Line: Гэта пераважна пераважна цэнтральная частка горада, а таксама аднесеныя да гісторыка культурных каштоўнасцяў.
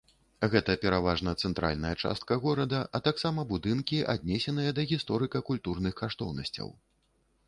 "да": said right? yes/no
yes